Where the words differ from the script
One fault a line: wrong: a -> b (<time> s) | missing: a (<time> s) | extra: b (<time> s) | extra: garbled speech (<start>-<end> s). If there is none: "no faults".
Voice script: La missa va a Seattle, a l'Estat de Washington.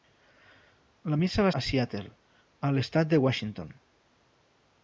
no faults